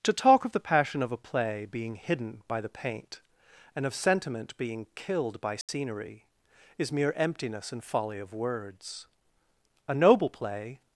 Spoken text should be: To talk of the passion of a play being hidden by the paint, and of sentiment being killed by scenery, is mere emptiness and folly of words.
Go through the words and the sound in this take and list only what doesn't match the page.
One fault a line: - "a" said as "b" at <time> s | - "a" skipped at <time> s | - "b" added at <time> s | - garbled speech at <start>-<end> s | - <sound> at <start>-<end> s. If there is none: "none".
- dropout at 5.6-5.7 s
- "A noble play" added at 9.9 s